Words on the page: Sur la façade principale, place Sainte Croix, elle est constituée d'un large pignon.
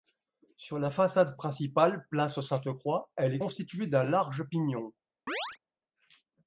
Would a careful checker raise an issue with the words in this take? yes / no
no